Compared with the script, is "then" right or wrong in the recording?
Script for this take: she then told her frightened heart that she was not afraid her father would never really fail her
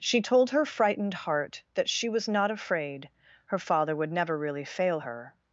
wrong